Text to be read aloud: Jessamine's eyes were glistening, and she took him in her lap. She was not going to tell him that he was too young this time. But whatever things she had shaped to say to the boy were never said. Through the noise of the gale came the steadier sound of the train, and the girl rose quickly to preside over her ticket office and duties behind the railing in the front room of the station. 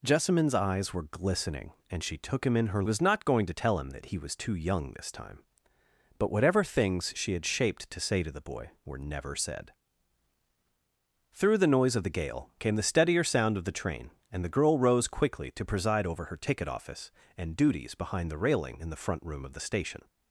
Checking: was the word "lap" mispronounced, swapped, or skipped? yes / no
yes